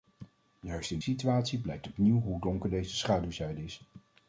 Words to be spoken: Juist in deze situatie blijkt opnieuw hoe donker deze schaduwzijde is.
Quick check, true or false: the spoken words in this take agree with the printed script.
false